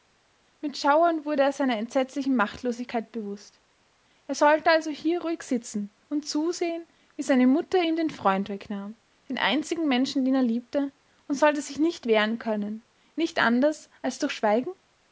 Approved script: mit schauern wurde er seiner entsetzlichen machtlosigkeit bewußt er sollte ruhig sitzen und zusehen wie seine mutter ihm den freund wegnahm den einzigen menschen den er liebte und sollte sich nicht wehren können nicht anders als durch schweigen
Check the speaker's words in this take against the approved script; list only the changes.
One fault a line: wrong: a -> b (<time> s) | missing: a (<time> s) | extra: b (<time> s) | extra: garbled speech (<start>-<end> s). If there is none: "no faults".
extra: also hier (4.7 s)